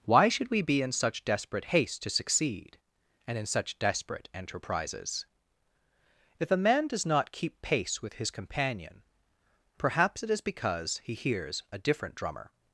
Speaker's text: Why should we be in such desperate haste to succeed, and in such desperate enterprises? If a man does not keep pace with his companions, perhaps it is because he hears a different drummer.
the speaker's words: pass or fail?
fail